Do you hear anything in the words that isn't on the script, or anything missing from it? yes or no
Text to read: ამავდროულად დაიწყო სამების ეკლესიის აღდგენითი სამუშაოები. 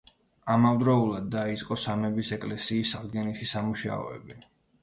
no